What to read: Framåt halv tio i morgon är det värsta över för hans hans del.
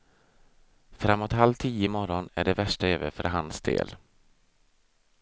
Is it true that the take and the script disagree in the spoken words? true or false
true